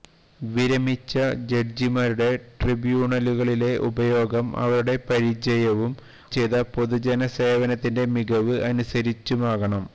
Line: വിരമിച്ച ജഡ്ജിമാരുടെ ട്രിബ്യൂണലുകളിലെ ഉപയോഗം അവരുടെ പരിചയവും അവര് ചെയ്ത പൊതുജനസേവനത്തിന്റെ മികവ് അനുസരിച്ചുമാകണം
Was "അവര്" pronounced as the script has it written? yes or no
no